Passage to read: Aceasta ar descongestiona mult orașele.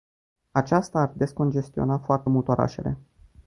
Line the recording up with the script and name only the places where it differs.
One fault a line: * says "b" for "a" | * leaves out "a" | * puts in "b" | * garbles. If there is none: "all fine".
* puts in "foarte"